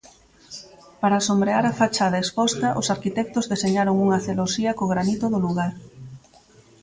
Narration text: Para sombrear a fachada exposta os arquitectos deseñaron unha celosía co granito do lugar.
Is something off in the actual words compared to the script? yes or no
no